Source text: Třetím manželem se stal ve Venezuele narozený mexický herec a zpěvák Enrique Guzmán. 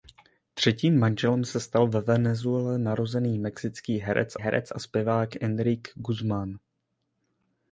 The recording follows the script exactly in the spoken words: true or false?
false